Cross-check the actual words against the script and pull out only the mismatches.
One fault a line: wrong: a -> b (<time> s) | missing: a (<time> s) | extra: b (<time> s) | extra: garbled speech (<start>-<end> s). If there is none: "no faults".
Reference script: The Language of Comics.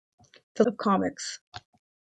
missing: Language (0.6 s)